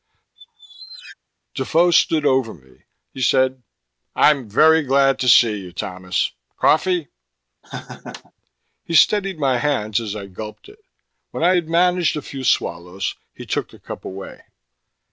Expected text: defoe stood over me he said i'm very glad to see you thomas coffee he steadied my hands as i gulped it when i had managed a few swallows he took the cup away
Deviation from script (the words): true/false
false